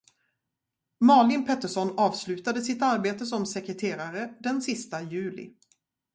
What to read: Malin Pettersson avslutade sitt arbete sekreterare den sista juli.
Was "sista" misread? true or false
false